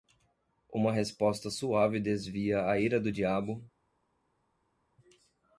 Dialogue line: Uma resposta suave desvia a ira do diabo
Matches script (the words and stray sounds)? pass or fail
pass